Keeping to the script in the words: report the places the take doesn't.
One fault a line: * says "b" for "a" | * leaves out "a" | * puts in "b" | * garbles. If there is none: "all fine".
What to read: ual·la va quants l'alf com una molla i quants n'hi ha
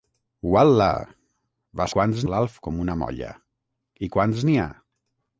all fine